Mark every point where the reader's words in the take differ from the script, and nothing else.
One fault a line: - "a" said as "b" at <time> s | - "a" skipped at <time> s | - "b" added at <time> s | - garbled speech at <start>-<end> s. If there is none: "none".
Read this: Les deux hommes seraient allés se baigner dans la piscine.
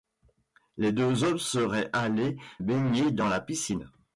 - "se" skipped at 2.4 s